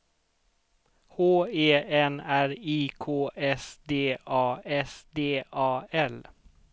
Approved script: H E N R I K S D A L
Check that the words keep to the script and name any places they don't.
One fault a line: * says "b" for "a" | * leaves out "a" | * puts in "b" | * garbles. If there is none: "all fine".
* puts in "S D A"